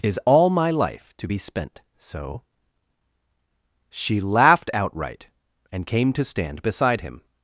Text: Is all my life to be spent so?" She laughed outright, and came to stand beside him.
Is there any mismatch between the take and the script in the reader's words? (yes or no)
no